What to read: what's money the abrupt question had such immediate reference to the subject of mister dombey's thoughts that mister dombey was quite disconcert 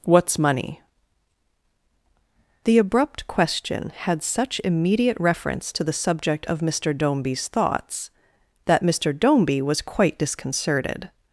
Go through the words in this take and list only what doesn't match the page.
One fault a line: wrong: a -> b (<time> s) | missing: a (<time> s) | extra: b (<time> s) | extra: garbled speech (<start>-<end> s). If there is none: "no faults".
wrong: disconcert -> disconcerted (10.2 s)